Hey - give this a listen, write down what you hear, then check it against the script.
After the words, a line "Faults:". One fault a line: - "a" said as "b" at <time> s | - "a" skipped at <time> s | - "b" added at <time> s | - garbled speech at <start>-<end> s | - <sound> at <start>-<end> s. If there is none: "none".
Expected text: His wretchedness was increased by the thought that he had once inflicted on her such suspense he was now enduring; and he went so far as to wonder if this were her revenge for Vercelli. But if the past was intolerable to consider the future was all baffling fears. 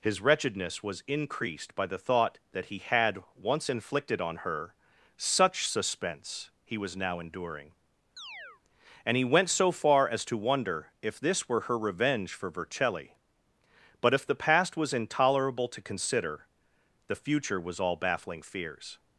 His wretchedness was increased by the thought that he had once inflicted on her such suspense he was now enduring; and he went so far as to wonder if this were her revenge for Vercelli. But if the past was intolerable to consider the future was all baffling fears.
Faults:
- chirp at 8.2-8.6 s